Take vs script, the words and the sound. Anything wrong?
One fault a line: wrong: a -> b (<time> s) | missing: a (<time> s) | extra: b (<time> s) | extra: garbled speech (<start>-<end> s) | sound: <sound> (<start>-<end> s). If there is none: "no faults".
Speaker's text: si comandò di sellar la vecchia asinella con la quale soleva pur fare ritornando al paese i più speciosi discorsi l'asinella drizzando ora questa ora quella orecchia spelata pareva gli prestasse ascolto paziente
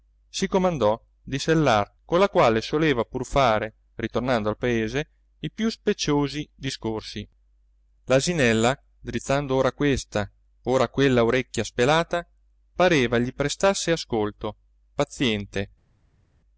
missing: la vecchia asinella (2.0 s)